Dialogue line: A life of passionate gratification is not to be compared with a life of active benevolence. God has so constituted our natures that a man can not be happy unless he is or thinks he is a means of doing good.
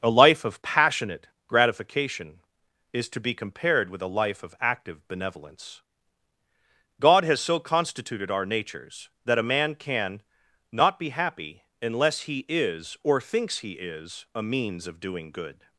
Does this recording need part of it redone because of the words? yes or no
yes